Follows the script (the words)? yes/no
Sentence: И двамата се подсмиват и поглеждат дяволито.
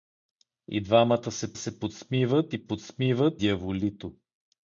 no